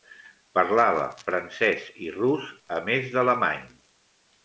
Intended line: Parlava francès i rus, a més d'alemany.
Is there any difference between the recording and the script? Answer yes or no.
no